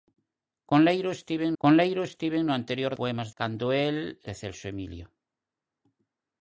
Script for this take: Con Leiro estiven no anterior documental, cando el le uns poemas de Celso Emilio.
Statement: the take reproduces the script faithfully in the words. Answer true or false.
false